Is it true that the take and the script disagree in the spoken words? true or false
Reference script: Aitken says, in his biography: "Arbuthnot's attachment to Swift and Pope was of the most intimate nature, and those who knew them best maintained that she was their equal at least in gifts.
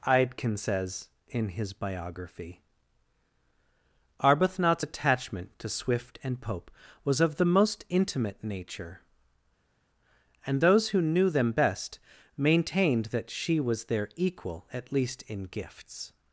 false